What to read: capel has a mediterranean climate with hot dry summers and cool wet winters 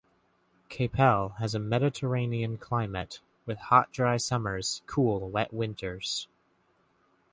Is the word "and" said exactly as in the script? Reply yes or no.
no